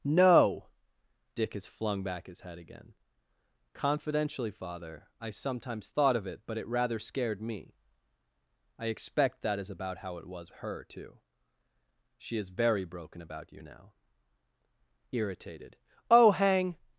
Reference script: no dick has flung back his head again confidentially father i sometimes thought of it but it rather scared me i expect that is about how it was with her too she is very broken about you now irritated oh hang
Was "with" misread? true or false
true